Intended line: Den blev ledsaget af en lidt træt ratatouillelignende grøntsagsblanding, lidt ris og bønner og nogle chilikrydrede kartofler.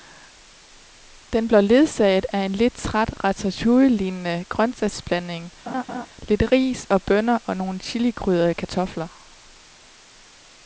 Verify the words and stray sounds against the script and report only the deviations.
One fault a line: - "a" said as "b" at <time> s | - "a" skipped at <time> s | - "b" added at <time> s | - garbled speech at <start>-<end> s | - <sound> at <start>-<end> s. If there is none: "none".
- laugh at 5.7-6.1 s